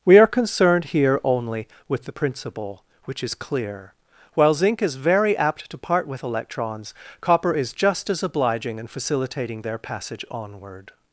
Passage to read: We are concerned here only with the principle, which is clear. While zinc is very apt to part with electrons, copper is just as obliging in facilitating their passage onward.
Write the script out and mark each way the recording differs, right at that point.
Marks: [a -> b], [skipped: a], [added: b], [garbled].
We are concerned here only with the principle, which is clear. While zinc is very apt to part with electrons, copper is just as obliging in facilitating their passage onward.